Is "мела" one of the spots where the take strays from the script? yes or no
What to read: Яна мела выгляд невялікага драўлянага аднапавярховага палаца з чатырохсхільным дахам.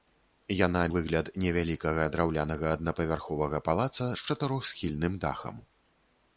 yes